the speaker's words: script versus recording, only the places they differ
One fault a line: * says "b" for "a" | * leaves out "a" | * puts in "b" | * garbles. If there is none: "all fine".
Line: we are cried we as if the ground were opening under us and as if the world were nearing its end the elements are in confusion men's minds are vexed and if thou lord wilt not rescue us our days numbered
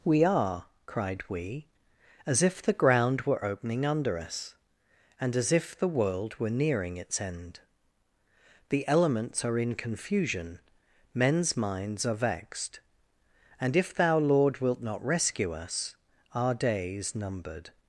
all fine